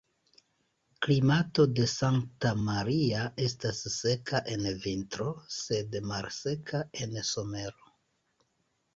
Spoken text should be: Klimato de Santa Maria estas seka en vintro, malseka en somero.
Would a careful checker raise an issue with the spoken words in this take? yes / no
yes